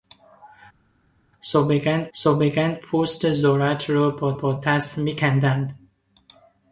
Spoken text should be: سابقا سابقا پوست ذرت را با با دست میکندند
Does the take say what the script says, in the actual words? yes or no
yes